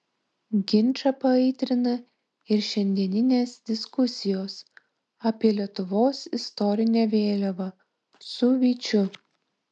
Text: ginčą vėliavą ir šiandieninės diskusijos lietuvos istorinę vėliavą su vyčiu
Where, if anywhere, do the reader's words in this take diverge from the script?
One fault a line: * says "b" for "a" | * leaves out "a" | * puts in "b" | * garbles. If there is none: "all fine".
* says "paaitrina" for "vėliavą"
* puts in "apie"